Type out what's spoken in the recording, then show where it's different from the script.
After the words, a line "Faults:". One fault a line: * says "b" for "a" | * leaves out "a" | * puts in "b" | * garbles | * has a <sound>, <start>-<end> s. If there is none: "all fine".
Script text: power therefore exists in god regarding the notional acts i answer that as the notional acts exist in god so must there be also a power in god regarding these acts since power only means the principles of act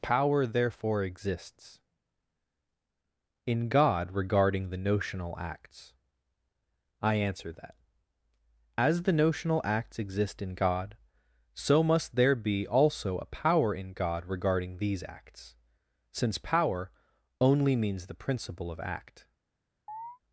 power therefore exists in god regarding the notional acts i answer that as the notional acts exist in god so must there be also a power in god regarding these acts since power only means the principle of act
Faults:
* says "principle" for "principles"
* has a chirp, 19.9-20.2 s